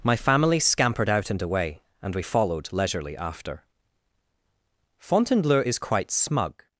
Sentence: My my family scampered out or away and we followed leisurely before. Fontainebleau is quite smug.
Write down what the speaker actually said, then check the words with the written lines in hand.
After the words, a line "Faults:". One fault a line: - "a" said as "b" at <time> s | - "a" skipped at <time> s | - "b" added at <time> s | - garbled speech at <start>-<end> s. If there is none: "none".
My family scampered out and away and we followed leisurely after. Fontainebleau is quite smug.
Faults:
- "my" skipped at 0.1 s
- "or" said as "and" at 1.3 s
- "before" said as "after" at 3.2 s